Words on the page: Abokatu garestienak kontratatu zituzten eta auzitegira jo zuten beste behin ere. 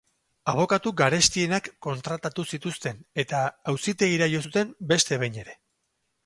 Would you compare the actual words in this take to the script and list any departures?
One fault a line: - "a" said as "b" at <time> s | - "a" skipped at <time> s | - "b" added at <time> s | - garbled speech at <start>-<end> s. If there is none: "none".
none